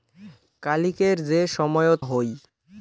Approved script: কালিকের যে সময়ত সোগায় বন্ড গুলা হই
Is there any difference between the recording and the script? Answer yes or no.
yes